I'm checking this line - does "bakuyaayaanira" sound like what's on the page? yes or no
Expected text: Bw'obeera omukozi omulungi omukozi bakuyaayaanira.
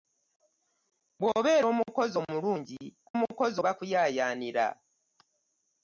yes